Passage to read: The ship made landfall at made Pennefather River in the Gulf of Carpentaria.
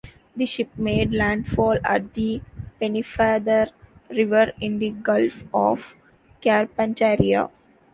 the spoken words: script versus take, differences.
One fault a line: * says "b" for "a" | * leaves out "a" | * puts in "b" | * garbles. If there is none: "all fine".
* says "the" for "made"